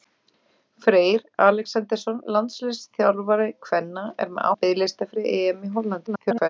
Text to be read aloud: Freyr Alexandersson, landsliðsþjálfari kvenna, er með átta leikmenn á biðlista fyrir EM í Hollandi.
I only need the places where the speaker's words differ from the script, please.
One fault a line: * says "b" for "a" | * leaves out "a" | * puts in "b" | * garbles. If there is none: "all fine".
* leaves out "átta leikmenn"
* garbles